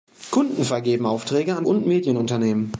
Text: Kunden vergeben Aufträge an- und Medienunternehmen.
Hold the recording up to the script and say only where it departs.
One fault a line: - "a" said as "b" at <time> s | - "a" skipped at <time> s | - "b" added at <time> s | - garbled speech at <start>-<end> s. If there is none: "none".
none